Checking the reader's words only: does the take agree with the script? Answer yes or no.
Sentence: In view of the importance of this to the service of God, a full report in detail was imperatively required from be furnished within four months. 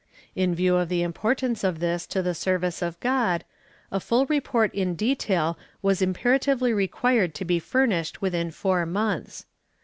no